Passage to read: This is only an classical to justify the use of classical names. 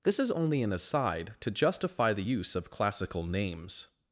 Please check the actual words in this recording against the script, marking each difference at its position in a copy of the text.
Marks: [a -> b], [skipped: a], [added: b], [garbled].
This is only an [classical -> aside] to justify the use of classical names.